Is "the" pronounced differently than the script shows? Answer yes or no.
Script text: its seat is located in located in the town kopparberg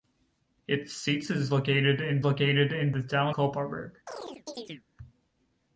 no